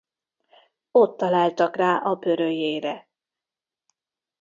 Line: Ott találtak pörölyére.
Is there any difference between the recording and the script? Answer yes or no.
yes